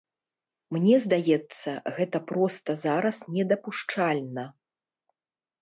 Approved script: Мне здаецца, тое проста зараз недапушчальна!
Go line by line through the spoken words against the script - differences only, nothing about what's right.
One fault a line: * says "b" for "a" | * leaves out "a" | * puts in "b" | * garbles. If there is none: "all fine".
* says "гэта" for "тое"